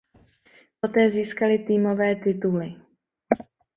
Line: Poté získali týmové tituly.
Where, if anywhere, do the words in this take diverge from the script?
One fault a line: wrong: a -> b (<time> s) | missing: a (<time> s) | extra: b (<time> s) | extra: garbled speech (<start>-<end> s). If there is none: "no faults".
no faults